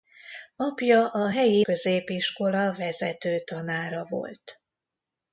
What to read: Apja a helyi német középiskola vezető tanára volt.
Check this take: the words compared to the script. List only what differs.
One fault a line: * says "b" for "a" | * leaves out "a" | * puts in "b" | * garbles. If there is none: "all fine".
* leaves out "német"